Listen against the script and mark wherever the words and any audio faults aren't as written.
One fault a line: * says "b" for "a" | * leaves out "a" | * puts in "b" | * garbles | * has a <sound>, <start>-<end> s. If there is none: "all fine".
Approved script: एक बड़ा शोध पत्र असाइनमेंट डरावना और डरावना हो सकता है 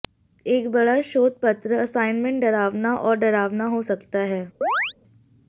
* has a chirp, 4.6-4.9 s